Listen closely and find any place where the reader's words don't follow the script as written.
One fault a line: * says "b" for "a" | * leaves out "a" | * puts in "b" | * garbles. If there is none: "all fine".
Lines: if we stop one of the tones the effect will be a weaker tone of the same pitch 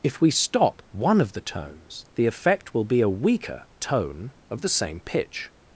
all fine